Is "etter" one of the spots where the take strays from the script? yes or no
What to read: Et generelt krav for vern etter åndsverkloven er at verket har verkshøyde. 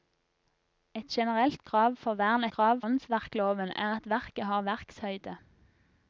yes